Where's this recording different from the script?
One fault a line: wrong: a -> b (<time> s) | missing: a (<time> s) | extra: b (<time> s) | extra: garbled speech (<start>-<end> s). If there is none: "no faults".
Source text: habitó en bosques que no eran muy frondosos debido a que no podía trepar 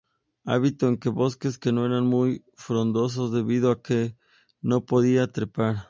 no faults